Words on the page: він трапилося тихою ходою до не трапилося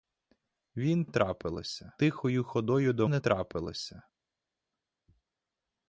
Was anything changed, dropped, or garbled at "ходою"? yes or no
no